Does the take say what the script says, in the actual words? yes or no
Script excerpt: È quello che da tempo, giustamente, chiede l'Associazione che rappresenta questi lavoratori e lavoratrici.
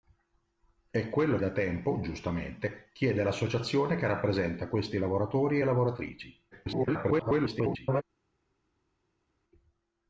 no